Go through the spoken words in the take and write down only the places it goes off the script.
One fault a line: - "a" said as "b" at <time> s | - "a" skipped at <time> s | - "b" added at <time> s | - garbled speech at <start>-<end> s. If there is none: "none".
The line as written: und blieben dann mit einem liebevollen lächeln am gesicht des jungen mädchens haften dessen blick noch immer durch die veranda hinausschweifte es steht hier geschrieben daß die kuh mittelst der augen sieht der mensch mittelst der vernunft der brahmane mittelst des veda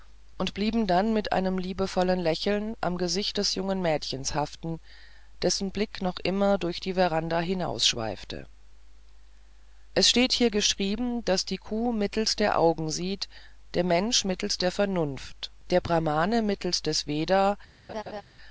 none